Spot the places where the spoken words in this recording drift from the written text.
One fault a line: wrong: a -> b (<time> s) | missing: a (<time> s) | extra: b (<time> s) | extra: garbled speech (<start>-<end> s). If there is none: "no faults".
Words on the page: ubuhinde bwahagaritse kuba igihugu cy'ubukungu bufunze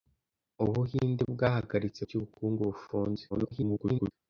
missing: kuba igihugu (2.0 s)
extra: garbled speech (3.3-4.1 s)